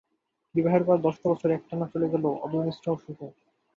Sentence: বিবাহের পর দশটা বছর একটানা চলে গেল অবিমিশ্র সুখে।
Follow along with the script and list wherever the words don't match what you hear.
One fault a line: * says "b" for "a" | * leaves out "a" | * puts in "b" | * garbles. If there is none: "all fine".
all fine